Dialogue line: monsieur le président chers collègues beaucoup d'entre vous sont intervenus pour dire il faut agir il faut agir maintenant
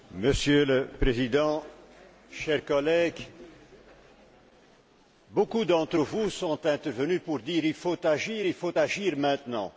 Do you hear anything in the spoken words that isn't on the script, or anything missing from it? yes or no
no